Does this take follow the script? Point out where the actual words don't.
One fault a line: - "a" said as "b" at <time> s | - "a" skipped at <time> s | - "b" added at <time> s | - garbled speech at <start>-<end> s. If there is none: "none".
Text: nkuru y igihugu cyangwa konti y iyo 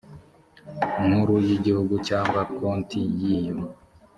none